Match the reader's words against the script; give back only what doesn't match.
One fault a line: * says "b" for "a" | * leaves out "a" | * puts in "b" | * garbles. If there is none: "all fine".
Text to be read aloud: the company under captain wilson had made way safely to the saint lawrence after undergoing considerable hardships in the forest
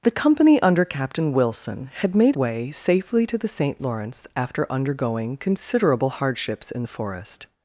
all fine